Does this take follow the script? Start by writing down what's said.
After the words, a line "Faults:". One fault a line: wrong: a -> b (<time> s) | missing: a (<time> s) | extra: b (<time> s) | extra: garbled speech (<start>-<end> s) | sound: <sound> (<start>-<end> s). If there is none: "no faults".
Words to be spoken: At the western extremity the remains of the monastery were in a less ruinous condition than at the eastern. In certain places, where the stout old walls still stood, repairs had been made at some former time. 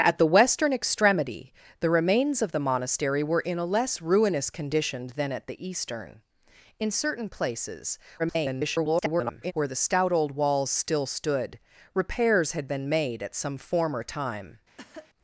At the western extremity the remains of the monastery were in a less ruinous condition than at the eastern. In certain places, [garbled] where the stout old walls still stood, repairs had been made at some former time.
Faults:
extra: garbled speech (8.2-9.5 s)
sound: cough (14.8-15.1 s)